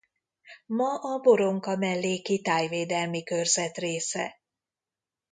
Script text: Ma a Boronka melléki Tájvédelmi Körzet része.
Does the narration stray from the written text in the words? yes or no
no